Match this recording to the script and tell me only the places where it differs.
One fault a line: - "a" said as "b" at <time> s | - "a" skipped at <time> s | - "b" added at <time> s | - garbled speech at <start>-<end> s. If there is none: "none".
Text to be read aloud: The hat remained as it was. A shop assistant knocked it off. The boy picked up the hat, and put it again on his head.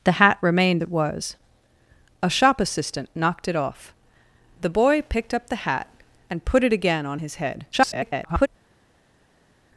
- "as" skipped at 0.8 s
- garbled speech at 7.7-8.5 s